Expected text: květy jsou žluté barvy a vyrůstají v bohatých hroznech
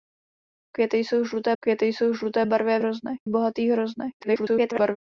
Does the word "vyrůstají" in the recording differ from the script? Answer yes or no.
yes